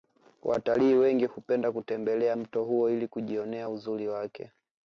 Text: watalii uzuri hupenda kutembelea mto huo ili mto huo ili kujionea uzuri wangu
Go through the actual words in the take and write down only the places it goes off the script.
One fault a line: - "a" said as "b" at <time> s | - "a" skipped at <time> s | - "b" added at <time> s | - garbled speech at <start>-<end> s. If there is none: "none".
- "uzuri" said as "wengi" at 0.9 s
- "mto huo ili" skipped at 3.1 s
- "wangu" said as "wake" at 4.1 s